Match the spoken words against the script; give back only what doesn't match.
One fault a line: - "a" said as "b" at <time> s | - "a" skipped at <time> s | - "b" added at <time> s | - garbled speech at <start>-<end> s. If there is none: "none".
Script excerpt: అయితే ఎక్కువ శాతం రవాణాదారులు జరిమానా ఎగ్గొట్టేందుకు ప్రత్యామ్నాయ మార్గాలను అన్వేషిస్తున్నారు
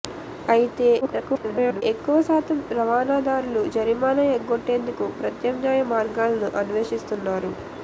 - garbled speech at 1.0-1.8 s